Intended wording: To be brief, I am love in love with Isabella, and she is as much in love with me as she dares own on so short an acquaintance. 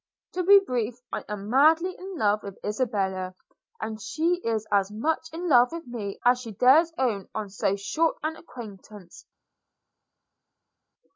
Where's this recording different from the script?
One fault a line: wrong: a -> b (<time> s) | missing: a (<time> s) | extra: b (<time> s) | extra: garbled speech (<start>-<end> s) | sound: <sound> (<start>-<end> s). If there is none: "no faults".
wrong: love -> madly (1.5 s)